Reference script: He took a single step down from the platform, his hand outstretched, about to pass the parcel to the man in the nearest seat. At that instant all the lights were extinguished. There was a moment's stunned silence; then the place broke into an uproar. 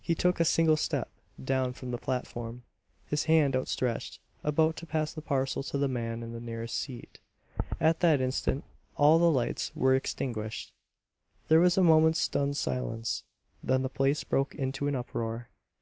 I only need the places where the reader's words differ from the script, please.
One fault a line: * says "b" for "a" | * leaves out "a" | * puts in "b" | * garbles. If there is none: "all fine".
all fine